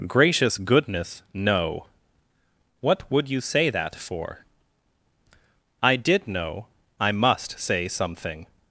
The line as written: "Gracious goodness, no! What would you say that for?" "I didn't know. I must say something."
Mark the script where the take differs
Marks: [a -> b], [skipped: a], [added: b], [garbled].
"Gracious goodness, no! What would you say that for?" "I [didn't -> did] know. I must say something."